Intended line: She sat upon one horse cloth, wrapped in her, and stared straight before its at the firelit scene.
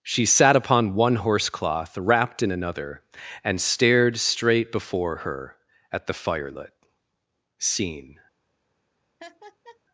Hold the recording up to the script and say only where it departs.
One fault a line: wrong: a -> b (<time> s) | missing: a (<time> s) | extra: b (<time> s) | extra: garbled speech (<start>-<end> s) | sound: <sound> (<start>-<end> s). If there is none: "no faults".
wrong: her -> another (2.5 s)
wrong: its -> her (5.2 s)
sound: laugh (9.2-9.8 s)